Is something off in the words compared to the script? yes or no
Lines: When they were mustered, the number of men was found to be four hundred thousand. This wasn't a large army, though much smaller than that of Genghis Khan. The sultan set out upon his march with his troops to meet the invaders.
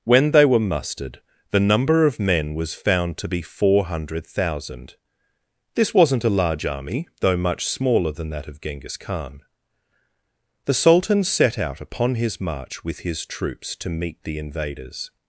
no